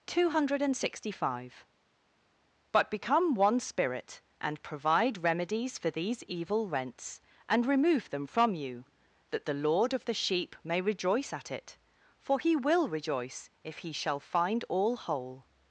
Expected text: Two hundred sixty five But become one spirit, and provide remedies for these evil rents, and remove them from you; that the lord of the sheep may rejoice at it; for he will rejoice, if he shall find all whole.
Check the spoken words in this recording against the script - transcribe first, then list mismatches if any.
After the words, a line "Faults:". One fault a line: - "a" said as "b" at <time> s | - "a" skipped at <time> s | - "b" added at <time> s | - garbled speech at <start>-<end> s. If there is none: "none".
Two hundred sixty five But become one spirit, and provide remedies for these evil rents, and remove them from you; that the lord of the sheep may rejoice at it; for he will rejoice, if he shall find all whole.
Faults:
none